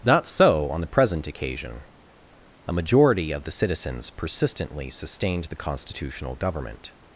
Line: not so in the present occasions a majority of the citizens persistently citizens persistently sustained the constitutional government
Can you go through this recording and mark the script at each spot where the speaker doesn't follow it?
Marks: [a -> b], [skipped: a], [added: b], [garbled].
not so [in -> on] the present [occasions -> occasion] a majority of the citizens persistently [skipped: citizens persistently] sustained the constitutional government